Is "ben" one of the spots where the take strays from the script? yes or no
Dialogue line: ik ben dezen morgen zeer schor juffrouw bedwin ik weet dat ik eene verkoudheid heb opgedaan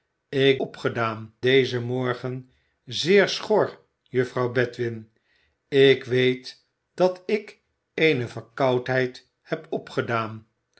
yes